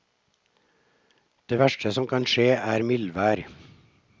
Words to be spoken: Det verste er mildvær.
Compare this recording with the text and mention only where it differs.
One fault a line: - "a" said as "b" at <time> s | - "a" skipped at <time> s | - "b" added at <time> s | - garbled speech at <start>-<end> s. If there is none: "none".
- "som kan skje" added at 1.9 s